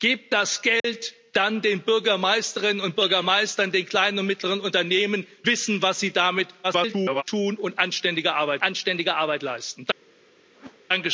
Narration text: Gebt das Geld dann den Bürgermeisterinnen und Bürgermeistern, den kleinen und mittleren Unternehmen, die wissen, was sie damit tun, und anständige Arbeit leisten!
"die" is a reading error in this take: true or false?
true